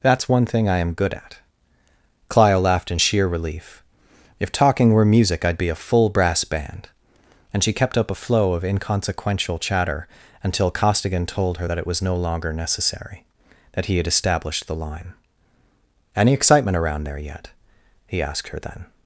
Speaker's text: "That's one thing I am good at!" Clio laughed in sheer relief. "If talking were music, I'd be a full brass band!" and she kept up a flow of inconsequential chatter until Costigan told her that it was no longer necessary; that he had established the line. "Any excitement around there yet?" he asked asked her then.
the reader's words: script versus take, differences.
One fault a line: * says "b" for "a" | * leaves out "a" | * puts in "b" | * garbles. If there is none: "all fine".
* leaves out "asked"